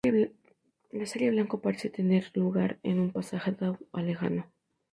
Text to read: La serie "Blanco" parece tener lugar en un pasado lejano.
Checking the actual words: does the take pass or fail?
pass